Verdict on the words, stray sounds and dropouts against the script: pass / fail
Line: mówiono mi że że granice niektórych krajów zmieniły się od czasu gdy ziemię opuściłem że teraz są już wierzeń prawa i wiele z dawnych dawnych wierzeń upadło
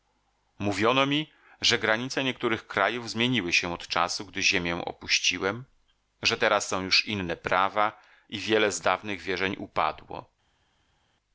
fail